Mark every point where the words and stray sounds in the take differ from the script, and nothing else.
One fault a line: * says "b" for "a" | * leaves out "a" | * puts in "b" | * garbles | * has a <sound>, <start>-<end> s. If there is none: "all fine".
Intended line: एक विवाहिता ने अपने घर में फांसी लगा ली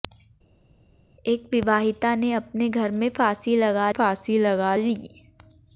* puts in "फांसी लगा"